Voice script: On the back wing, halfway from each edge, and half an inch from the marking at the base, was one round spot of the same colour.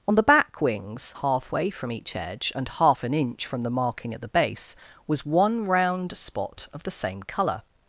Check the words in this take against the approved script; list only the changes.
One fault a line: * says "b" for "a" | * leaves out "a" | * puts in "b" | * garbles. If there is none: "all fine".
* says "wings" for "wing"